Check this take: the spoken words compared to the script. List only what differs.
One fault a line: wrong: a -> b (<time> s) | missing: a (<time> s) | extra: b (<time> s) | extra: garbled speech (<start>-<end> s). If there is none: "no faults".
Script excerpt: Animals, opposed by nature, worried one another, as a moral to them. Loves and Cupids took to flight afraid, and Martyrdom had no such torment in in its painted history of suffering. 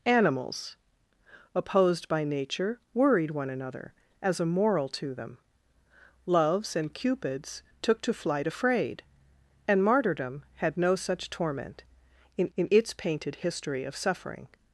no faults